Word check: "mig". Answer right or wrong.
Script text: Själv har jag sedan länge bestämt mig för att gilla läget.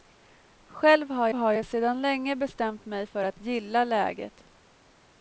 right